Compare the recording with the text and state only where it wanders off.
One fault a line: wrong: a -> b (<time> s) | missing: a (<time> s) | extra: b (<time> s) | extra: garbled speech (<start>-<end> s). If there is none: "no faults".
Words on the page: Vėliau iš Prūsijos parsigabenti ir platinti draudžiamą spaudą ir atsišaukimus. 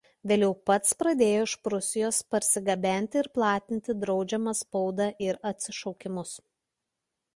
extra: pats pradėjo (0.7 s)